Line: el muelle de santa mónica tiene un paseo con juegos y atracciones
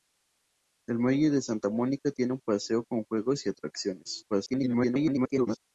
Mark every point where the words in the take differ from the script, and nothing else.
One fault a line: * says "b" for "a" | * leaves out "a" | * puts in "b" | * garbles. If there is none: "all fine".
* garbles